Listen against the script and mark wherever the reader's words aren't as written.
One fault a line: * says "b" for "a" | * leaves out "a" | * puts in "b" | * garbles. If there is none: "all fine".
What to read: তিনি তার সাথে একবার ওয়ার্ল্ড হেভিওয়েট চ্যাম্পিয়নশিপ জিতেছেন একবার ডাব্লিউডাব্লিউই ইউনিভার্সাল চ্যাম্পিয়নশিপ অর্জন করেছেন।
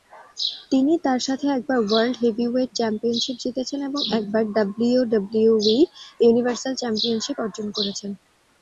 * puts in "এবং"